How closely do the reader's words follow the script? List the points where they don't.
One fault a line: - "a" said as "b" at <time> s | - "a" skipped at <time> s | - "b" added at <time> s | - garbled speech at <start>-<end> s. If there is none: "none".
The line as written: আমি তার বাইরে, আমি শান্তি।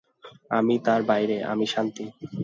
none